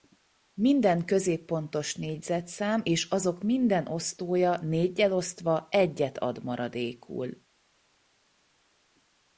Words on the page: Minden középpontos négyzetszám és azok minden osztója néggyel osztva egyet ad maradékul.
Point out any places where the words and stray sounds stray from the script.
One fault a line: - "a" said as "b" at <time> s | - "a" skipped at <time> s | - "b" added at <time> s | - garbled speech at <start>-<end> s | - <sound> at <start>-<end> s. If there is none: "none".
none